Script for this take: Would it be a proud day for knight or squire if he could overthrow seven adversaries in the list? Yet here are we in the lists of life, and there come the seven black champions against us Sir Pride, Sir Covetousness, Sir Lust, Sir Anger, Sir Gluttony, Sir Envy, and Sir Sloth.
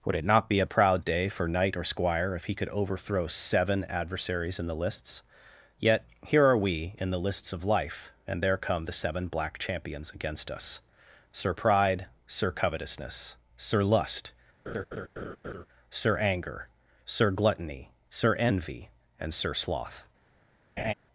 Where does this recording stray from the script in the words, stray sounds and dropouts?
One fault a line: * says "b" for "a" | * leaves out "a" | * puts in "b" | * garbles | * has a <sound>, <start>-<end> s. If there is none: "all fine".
* puts in "not"
* says "lists" for "list"
* has a laugh, 14.7-15.7 s
* has a laugh, 20.8-20.9 s